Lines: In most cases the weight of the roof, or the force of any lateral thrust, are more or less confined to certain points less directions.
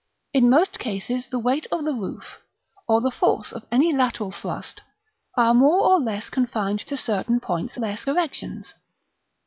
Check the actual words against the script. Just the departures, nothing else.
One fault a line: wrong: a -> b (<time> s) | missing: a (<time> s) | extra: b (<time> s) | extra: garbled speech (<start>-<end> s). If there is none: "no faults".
no faults